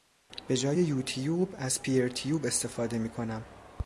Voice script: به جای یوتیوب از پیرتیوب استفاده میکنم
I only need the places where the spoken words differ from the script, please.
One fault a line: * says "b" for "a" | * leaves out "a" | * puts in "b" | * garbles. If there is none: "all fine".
all fine